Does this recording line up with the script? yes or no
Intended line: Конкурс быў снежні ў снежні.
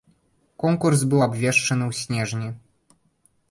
no